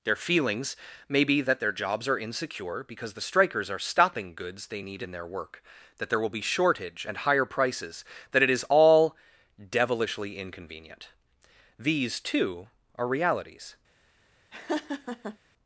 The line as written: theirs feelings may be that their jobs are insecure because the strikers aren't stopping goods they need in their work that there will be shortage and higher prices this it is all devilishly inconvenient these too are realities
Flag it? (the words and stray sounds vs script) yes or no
yes